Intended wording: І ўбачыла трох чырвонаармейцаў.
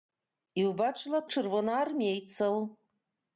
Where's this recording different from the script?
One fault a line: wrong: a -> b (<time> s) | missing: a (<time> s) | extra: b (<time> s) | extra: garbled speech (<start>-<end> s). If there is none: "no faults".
missing: трох (1.2 s)